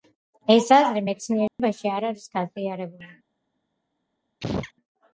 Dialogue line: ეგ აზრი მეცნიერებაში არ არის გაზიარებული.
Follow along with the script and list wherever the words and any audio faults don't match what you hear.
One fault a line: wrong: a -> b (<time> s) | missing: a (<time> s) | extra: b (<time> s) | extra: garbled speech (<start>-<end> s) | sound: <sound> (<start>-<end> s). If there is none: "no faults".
wrong: ეგ -> ეს (0.6 s)
sound: dropout (1.5-1.6 s)
sound: sneeze (4.4-4.7 s)